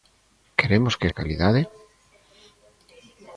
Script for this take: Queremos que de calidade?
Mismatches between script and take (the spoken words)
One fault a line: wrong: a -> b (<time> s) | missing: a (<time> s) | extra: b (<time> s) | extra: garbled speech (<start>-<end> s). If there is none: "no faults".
no faults